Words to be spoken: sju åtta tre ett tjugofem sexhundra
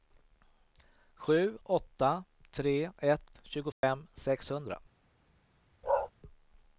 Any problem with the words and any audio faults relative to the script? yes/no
yes